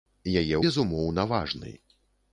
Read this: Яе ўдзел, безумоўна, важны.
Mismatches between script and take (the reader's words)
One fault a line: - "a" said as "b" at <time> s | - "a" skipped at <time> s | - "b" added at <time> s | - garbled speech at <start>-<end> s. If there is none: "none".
- "ўдзел" skipped at 0.6 s